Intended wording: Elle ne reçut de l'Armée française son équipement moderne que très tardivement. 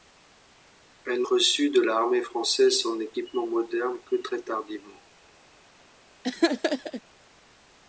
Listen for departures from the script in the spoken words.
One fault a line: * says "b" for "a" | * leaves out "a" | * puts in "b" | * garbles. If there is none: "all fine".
* leaves out "ne"